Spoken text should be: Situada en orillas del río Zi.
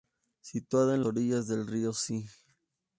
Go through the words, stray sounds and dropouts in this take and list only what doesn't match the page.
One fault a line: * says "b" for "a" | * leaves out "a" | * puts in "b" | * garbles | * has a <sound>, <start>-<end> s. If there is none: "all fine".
all fine